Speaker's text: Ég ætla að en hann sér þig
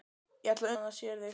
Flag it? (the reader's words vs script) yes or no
no